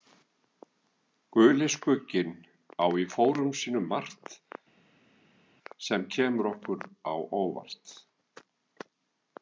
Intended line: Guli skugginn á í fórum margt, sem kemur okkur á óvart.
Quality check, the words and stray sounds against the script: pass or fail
fail